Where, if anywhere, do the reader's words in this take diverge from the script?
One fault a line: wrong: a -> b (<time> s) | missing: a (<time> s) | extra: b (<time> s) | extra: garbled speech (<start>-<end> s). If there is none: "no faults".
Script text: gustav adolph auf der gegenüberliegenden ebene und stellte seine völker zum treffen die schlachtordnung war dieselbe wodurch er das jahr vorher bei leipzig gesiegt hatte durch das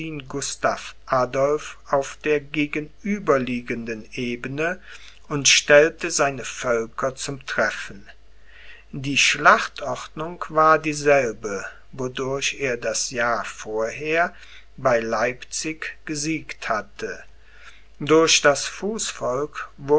no faults